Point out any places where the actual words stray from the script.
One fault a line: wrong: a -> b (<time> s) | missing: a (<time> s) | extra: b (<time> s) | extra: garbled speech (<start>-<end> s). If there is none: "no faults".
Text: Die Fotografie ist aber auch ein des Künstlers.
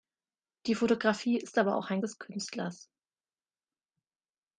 no faults